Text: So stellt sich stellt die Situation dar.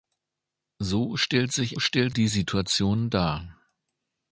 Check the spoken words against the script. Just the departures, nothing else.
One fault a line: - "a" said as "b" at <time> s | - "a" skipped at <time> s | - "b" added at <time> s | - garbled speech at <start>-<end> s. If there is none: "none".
none